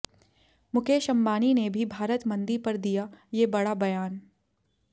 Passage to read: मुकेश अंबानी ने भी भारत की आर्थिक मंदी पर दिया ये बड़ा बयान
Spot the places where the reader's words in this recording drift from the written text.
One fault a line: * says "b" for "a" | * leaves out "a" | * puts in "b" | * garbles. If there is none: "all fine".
* leaves out "की आर्थिक"